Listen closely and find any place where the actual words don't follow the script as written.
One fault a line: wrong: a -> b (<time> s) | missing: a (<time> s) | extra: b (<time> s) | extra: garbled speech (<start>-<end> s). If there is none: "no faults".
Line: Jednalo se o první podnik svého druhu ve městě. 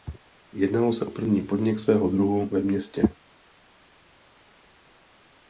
no faults